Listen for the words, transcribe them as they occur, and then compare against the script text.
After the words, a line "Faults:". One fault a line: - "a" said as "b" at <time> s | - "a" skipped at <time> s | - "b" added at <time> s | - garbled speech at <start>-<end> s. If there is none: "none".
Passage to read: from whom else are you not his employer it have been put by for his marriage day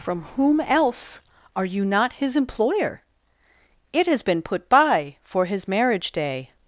from whom else are you not his employer it has been put by for his marriage day
Faults:
- "have" said as "has" at 4.1 s